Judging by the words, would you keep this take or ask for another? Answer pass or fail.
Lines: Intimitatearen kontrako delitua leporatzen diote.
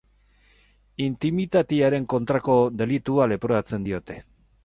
pass